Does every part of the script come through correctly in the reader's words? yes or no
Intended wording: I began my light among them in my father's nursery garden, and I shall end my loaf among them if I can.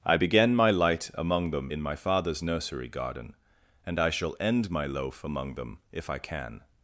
yes